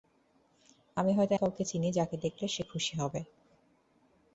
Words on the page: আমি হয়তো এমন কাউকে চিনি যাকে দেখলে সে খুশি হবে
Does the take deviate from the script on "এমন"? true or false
true